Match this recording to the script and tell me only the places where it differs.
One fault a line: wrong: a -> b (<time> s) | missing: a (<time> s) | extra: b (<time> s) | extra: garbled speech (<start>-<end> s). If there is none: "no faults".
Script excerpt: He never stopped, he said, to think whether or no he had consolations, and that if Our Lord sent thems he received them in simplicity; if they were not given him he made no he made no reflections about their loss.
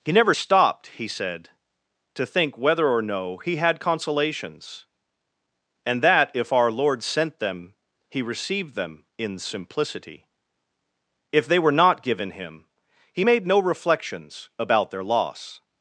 wrong: thems -> them (7.4 s)
missing: he made no (13.6 s)